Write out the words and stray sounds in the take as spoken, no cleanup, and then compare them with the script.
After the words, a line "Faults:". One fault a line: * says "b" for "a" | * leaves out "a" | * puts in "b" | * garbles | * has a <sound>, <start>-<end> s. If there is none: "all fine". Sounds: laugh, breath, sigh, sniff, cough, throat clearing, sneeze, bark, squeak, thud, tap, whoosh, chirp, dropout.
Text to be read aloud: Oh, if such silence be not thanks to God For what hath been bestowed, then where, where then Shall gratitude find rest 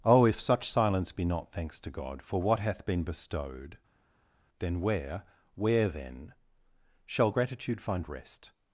Oh, if such silence be not thanks to God For what hath been bestowed, then where, where then Shall gratitude find rest
Faults:
all fine